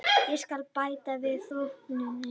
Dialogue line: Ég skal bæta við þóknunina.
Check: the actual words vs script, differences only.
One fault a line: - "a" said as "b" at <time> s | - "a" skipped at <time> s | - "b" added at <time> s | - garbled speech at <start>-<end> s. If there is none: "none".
none